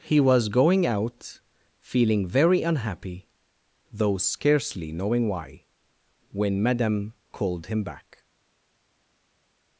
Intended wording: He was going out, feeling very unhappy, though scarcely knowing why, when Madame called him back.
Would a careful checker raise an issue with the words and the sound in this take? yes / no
no